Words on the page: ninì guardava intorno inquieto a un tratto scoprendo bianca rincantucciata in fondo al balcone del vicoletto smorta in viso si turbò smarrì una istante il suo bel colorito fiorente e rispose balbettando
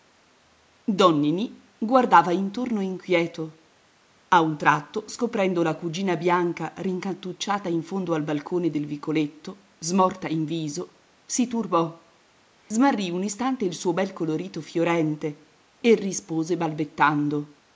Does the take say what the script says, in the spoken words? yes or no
no